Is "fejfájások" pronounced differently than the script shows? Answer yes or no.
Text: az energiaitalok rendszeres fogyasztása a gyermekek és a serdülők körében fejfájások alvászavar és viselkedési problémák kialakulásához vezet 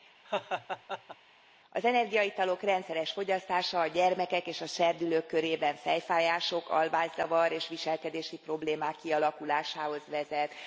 no